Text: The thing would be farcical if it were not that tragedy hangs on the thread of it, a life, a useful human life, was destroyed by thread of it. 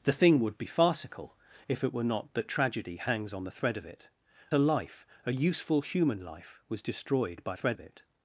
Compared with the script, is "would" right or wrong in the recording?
right